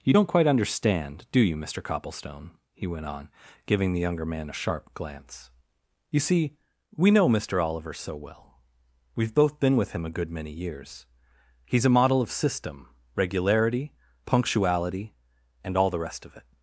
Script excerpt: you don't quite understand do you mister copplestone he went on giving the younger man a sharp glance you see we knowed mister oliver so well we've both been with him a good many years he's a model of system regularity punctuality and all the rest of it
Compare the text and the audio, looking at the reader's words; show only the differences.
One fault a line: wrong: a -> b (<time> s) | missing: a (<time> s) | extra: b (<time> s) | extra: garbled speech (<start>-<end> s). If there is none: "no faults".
wrong: knowed -> know (7.1 s)